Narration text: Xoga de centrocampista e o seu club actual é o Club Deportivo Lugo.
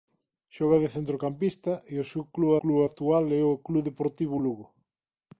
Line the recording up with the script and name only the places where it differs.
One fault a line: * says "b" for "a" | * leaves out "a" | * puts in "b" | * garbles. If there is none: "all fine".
* puts in "club"